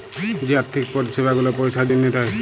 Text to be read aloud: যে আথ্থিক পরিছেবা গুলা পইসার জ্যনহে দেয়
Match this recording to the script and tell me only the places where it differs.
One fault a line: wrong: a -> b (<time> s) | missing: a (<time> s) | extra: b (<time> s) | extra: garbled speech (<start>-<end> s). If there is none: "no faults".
no faults